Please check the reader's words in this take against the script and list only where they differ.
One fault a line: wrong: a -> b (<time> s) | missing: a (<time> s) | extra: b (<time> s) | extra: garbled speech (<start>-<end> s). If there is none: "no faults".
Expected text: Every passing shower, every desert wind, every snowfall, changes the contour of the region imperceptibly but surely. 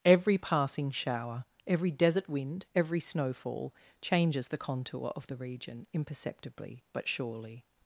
no faults